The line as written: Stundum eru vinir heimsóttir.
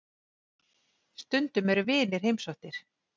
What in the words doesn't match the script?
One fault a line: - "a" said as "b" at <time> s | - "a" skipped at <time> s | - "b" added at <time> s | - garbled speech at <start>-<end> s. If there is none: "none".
none